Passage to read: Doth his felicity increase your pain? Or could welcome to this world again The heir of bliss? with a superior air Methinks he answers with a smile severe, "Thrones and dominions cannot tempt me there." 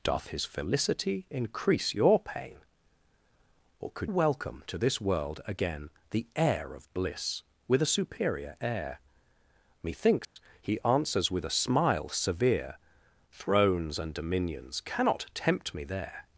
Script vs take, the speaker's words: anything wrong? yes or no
no